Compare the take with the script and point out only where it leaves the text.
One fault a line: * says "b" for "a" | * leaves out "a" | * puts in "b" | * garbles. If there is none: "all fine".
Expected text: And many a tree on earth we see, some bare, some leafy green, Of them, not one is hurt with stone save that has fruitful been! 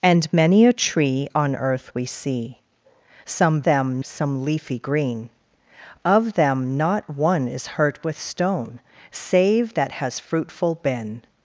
* says "them" for "bare"